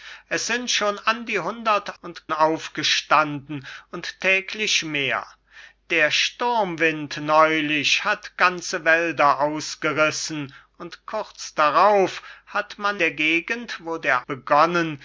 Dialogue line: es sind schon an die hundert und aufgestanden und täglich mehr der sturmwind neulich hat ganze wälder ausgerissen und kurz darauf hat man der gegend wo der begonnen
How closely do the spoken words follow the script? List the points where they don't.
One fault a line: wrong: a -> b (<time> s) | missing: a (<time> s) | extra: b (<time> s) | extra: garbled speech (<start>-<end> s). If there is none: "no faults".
no faults